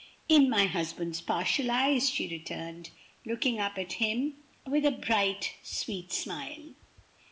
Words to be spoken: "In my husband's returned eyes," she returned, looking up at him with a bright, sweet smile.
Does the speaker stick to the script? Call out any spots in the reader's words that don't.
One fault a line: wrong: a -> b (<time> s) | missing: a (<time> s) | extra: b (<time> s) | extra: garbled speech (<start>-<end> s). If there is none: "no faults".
wrong: returned -> partial (1.2 s)